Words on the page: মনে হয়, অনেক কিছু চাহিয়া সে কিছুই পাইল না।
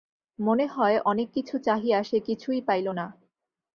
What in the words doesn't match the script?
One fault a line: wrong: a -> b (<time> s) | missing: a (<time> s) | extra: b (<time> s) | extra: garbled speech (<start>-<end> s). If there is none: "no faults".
no faults